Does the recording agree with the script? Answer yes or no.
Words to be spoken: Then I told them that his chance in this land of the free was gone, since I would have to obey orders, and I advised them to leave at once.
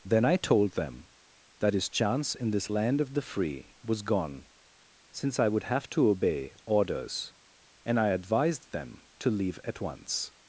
yes